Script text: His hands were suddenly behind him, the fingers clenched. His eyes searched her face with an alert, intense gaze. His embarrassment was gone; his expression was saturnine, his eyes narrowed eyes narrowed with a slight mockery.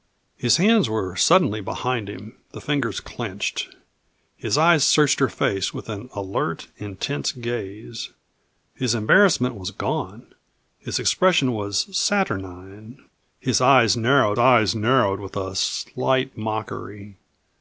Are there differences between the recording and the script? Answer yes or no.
no